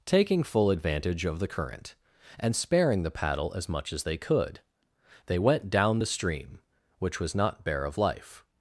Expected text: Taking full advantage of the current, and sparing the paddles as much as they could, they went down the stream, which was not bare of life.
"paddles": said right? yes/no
no